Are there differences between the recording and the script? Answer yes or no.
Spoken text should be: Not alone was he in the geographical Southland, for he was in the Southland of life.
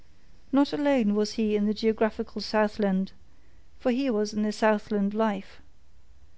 yes